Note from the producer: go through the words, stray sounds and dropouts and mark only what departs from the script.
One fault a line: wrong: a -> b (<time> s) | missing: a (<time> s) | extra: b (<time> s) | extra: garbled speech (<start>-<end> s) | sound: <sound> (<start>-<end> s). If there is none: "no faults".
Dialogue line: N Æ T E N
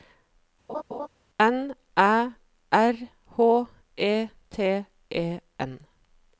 sound: laugh (0.7-1.1 s)
extra: R H E (2.7 s)